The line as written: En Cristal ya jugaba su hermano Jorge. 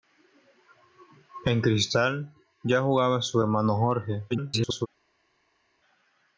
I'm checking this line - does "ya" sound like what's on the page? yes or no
yes